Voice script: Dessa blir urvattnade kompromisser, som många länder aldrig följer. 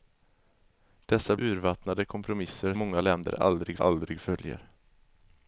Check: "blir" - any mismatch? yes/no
yes